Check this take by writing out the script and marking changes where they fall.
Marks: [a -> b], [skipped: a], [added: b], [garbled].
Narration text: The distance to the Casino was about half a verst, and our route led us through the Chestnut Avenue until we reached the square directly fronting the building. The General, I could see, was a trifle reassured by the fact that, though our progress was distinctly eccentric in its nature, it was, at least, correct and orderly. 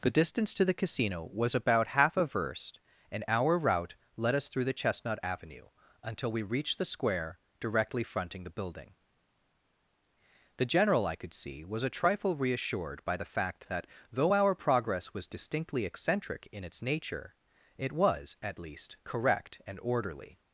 The distance to the Casino was about half a verst, and our route led us through the Chestnut Avenue until we reached the square directly fronting the building. The General, I could see, was a trifle reassured by the fact that, though our progress was distinctly eccentric in its nature, it was, at least, correct and orderly.